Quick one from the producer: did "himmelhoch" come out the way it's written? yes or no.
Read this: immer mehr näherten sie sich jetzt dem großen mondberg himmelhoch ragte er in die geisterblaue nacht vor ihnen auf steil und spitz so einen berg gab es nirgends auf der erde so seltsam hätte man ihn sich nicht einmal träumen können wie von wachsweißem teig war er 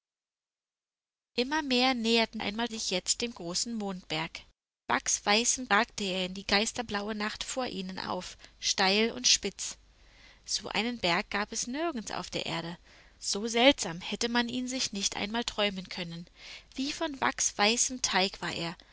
no